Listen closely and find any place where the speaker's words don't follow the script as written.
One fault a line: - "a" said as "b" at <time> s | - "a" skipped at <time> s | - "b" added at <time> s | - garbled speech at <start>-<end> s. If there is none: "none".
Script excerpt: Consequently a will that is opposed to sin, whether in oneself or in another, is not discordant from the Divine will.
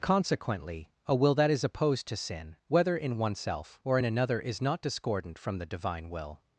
none